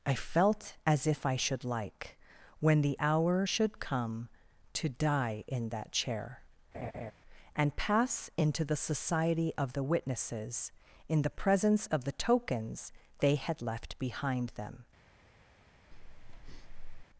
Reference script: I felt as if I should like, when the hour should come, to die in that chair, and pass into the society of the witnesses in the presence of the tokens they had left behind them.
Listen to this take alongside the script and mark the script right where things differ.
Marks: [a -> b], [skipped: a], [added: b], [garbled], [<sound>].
I felt as if I should like, when the hour should come, to die in that chair, [laugh] and pass into the society of the witnesses in the presence of the tokens they had left behind them. [breath]